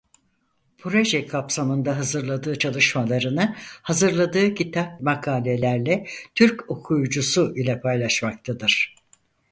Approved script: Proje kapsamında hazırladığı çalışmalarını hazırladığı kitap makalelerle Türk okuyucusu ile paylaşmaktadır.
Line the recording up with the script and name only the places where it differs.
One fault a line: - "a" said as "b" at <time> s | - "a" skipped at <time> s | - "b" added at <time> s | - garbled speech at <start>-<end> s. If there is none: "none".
none